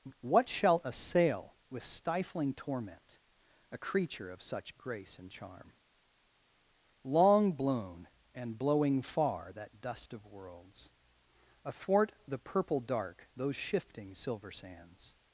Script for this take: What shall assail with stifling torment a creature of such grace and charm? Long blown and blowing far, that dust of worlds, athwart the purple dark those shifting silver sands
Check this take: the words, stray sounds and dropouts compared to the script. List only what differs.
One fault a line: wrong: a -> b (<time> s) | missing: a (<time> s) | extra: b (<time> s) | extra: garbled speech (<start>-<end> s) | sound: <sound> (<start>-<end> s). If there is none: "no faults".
no faults